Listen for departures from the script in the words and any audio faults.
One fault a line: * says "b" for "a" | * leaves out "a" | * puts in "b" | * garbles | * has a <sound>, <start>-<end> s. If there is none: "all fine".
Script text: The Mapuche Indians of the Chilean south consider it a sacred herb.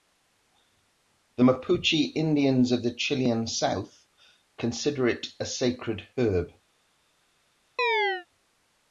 * has a chirp, 7.8-8.3 s